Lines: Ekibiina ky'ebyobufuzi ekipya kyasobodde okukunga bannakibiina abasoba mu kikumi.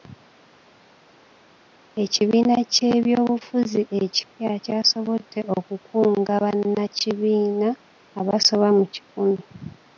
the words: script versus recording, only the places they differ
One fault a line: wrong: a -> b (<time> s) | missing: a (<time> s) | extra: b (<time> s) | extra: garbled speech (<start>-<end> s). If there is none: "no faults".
no faults